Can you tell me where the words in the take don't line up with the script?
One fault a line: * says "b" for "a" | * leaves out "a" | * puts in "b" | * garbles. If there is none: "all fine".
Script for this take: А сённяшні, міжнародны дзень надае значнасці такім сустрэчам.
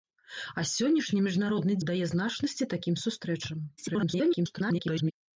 * leaves out "дзень"
* garbles